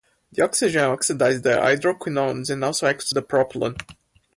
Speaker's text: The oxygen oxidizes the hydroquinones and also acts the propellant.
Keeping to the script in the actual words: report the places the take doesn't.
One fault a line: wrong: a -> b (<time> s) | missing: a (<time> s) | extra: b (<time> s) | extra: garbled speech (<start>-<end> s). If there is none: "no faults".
no faults